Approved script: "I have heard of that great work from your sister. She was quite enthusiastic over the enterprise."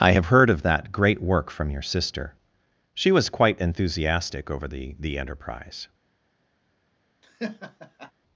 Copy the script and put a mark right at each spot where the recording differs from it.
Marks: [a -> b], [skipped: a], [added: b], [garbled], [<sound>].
"I have heard of that great work from your sister. She was quite enthusiastic over the [added: the] enterprise." [laugh]